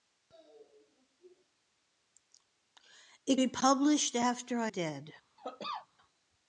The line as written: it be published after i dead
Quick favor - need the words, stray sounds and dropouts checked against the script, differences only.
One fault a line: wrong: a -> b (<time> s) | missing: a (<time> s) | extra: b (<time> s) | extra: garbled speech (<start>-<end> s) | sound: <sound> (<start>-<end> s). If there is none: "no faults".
sound: cough (5.4-5.9 s)